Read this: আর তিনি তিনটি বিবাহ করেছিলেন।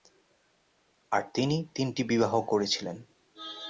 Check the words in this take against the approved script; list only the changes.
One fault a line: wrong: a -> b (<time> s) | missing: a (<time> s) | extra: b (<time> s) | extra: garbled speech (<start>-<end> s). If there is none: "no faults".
no faults